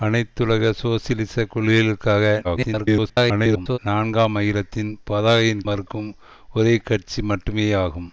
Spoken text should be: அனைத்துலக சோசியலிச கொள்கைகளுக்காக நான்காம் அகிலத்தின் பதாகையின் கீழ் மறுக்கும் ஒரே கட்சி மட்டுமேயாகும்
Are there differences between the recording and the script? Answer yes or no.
yes